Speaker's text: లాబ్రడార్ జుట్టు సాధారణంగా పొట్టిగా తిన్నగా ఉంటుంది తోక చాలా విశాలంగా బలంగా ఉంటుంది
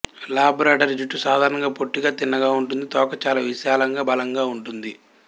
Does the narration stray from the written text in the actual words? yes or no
no